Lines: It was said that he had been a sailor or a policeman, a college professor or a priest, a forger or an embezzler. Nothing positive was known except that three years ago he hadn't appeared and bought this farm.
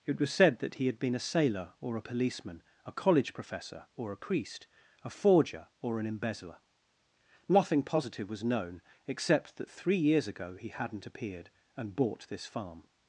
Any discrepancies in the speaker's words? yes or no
no